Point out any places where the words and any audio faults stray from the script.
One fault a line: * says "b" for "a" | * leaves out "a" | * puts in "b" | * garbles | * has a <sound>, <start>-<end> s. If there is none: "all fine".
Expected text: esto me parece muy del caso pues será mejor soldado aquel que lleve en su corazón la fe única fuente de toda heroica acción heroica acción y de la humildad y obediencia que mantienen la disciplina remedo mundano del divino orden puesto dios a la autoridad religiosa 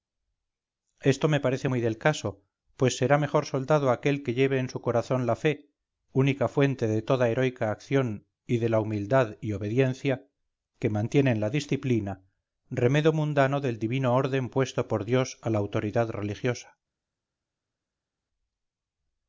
* leaves out "heroica acción"
* puts in "por"